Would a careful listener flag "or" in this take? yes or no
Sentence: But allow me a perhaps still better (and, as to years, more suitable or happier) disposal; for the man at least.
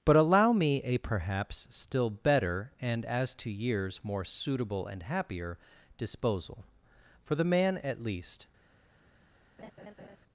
yes